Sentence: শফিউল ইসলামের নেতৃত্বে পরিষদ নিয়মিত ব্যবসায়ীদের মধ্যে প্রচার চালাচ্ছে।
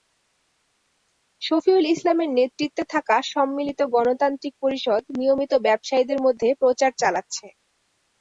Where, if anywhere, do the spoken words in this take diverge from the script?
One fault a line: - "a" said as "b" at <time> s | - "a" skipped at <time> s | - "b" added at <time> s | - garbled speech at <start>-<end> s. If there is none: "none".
- "থাকা সম্মিলিত গণতান্ত্রিক" added at 2.9 s